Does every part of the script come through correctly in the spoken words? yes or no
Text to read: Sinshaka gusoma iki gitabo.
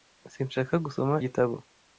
no